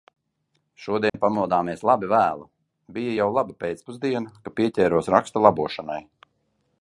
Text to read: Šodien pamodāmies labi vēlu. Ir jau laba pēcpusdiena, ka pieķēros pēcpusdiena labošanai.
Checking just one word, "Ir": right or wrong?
wrong